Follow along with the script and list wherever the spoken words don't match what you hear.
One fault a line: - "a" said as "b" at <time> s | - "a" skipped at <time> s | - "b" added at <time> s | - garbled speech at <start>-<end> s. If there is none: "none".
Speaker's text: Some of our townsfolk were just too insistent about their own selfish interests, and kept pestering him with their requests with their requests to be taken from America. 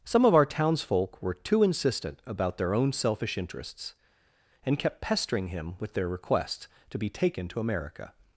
- "just" skipped at 1.3 s
- "with their requests" skipped at 6.7 s
- "from" said as "to" at 7.5 s